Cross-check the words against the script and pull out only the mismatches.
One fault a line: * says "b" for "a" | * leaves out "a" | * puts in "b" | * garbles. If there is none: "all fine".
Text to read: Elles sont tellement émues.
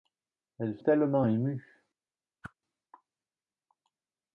* leaves out "sont"